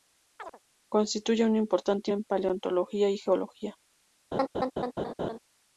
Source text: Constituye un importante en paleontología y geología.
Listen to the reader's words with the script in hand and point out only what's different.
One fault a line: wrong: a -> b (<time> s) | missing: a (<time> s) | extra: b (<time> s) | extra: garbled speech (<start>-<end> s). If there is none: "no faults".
no faults